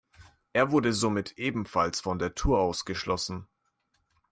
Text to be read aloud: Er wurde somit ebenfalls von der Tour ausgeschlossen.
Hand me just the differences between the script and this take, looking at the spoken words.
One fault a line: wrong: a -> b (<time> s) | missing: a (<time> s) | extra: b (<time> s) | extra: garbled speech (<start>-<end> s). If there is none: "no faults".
no faults